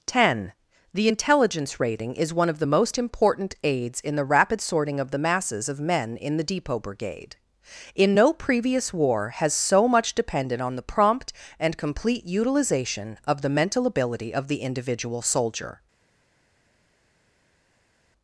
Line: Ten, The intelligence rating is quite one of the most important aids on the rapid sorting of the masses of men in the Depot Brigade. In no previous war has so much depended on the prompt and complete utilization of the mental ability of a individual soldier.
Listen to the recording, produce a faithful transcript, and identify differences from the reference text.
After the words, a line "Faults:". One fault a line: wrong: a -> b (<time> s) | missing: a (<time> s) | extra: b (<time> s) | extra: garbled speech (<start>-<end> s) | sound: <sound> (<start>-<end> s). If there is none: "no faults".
Ten, The intelligence rating is one of the most important aids in the rapid sorting of the masses of men in the Depot Brigade. In no previous war has so much depended on the prompt and complete utilization of the mental ability of the individual soldier.
Faults:
missing: quite (2.3 s)
wrong: on -> in (4.0 s)
wrong: a -> the (14.5 s)